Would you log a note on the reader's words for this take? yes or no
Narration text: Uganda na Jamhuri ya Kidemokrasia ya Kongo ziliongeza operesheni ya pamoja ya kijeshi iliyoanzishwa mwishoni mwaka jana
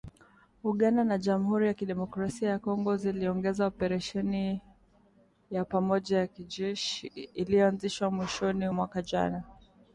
no